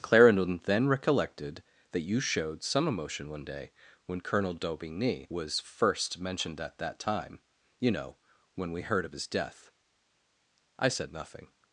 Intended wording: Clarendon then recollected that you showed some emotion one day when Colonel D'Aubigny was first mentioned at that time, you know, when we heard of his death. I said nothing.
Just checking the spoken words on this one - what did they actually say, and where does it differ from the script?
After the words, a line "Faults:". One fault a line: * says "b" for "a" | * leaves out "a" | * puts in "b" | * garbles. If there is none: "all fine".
Clarendon then recollected that you showed some emotion one day when Colonel D'Aubigny was first mentioned at that time, you know, when we heard of his death. I said nothing.
Faults:
all fine